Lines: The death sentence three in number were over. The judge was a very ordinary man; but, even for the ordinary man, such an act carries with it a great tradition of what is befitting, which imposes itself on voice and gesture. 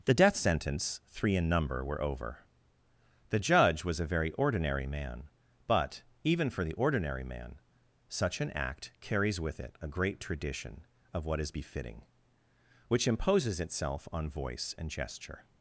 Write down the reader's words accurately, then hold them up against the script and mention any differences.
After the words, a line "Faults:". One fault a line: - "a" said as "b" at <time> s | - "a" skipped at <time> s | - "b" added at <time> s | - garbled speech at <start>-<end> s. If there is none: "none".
The death sentence three in number were over. The judge was a very ordinary man; but, even for the ordinary man, such an act carries with it a great tradition of what is befitting, which imposes itself on voice and gesture.
Faults:
none